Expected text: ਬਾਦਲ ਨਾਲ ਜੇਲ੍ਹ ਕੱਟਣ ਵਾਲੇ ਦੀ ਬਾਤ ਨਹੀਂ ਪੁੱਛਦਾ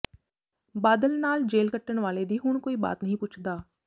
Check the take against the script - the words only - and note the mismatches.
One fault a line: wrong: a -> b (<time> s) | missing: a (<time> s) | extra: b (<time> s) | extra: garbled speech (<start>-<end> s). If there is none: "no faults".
extra: ਹੁਣ ਕੋਈ (2.4 s)